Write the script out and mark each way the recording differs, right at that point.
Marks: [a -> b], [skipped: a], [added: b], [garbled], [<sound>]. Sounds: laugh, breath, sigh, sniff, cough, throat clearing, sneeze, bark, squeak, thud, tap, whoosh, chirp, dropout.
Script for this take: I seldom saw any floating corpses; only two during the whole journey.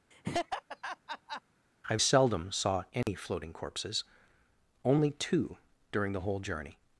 [laugh] I seldom saw any [dropout] floating corpses; only two during the whole journey.